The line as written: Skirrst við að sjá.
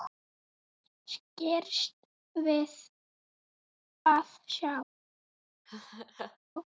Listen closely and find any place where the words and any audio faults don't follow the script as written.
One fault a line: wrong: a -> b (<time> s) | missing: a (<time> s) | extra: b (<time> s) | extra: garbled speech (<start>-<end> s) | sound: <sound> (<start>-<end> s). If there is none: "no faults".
sound: laugh (5.7-6.4 s)